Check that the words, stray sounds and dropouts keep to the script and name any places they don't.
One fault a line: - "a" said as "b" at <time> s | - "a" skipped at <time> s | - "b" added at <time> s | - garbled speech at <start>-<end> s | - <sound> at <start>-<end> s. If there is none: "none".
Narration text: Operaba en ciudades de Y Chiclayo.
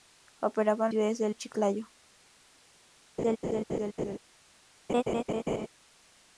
- laugh at 3.2-4.2 s
- laugh at 4.9-5.7 s